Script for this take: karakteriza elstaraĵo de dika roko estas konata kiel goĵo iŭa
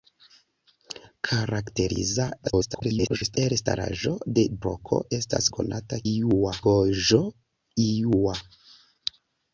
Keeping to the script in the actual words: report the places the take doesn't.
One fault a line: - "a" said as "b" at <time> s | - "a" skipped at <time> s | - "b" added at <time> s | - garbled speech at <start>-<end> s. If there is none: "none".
- garbled speech at 2.4-3.4 s
- "dika" skipped at 4.4 s
- "kiel" said as "iŭa" at 6.1 s